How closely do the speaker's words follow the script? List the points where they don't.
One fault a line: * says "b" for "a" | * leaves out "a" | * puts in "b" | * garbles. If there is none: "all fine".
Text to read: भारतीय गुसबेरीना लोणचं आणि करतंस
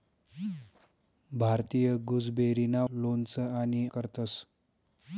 all fine